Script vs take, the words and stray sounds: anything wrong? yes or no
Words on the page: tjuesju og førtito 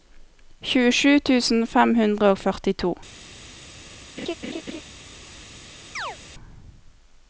yes